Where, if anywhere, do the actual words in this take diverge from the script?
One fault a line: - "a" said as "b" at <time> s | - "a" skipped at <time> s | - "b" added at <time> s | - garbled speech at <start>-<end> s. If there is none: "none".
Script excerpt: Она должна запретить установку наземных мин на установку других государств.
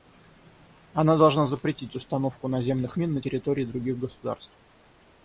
- "установку" said as "территории" at 3.2 s